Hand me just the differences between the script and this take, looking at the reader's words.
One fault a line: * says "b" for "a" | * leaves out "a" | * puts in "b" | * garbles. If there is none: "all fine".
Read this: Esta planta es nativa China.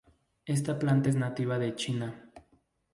* puts in "de"